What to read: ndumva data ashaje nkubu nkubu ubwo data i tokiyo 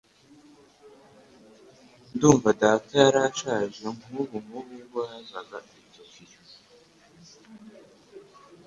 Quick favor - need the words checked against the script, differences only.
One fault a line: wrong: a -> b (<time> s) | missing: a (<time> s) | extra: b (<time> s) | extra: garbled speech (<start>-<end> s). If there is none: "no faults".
extra: yari (3.0 s)
wrong: data -> yazaga (5.1 s)